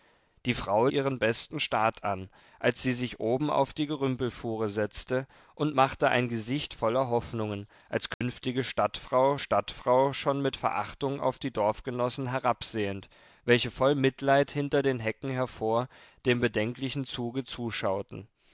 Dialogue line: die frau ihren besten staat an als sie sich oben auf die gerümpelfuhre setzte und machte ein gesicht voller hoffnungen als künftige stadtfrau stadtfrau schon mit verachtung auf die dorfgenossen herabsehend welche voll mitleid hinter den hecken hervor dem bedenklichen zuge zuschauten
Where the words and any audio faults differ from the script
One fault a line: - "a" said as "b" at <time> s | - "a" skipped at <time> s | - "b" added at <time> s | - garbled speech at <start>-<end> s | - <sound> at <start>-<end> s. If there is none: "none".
- dropout at 8.1-8.2 s